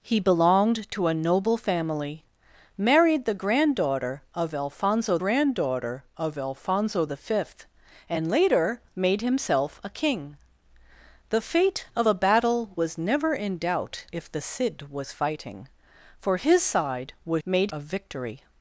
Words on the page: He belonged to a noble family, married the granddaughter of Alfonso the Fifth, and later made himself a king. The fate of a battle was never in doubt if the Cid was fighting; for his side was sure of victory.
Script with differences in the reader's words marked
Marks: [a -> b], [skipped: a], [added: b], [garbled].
He belonged to a noble family, married the granddaughter of Alfonso [added: granddaughter of Alfonso] the Fifth, and later made himself a king. The fate of a battle was never in doubt if the Cid was fighting; for his side was [sure -> made] of victory.